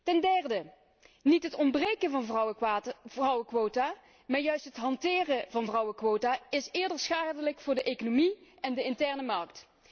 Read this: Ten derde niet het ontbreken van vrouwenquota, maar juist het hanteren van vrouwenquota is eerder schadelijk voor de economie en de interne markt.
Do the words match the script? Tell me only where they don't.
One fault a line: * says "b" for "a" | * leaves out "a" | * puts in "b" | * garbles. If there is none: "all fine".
all fine